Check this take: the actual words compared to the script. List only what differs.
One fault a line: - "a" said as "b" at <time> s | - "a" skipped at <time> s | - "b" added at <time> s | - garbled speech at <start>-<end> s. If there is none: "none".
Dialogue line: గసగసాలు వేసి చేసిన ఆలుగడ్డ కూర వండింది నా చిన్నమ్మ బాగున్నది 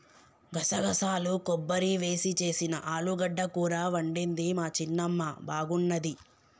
- "కొబ్బరి" added at 1.5 s
- "నా" said as "మా" at 4.5 s